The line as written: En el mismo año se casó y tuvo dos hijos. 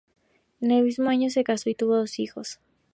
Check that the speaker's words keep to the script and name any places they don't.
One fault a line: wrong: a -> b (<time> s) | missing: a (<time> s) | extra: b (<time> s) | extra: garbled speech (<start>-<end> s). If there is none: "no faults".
no faults